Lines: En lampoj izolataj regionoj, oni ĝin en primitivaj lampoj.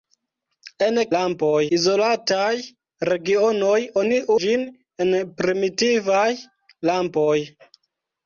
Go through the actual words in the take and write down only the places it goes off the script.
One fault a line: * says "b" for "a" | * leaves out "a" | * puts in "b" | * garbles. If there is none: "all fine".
all fine